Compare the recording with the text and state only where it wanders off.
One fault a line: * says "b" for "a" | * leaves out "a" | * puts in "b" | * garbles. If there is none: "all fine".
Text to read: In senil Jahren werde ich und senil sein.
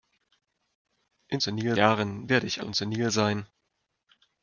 all fine